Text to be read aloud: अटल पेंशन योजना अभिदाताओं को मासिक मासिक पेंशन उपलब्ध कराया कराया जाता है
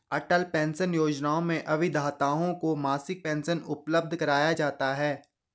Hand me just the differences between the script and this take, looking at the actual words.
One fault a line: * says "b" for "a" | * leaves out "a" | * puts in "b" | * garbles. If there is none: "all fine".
* puts in "में"
* leaves out "मासिक"
* leaves out "कराया"